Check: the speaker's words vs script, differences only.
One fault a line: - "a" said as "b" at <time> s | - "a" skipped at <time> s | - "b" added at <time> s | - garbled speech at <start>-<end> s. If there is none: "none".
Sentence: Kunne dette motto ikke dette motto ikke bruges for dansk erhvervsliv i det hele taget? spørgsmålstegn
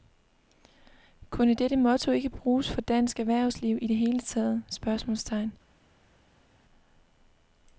- "dette motto ikke" skipped at 2.3 s